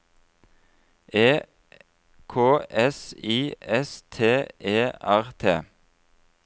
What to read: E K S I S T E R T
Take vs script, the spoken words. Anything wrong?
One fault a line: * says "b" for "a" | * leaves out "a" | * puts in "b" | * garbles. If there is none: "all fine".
all fine